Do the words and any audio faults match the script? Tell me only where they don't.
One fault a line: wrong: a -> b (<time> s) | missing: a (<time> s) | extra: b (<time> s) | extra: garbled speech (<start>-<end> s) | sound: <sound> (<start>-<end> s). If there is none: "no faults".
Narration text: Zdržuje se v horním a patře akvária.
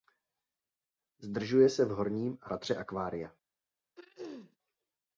sound: throat clearing (4.0-4.6 s)